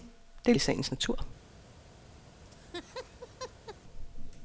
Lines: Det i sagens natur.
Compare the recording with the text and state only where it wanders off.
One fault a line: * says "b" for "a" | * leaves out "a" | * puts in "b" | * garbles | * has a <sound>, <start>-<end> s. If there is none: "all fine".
* has a laugh, 2.4-3.8 s